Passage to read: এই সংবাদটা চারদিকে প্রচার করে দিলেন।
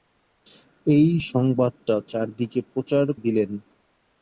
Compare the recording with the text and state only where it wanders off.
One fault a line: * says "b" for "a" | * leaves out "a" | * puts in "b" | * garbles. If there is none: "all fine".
* leaves out "করে"